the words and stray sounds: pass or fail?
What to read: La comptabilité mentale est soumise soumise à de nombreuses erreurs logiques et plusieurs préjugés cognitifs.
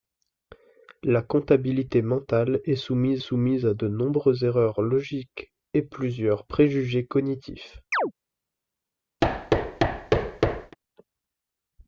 fail